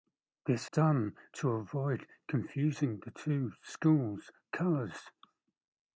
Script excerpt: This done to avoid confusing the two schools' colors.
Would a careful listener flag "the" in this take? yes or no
no